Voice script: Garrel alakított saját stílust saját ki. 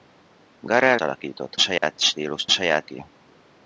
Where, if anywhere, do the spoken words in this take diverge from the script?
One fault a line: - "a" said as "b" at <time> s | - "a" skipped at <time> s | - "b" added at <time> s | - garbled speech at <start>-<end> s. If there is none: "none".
none